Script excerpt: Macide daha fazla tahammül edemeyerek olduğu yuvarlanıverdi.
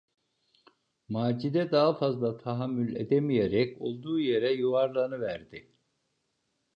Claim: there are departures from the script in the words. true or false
true